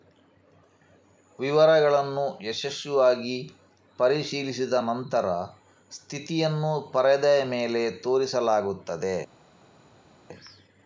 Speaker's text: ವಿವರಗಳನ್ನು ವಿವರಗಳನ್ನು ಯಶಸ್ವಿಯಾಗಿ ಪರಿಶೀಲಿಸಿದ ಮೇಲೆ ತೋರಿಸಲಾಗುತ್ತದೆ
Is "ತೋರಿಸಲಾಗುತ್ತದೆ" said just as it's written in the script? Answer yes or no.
yes